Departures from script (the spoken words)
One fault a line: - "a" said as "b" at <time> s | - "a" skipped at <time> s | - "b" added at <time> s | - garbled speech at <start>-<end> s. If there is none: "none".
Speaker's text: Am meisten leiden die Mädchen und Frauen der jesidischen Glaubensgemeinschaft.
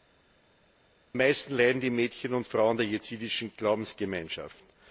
none